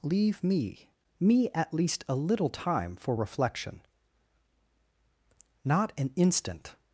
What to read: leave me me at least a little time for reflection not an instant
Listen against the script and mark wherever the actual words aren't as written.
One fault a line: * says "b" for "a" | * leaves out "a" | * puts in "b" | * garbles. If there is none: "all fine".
all fine